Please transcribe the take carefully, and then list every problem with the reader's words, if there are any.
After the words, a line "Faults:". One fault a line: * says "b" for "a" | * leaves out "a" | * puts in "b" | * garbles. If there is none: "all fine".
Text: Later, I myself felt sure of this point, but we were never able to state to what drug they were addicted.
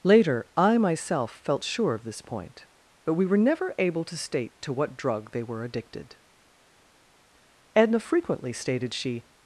Later, I myself felt sure of this point, but we were never able to state to what drug they were addicted. Edna frequently stated she
Faults:
* puts in "Edna frequently stated she"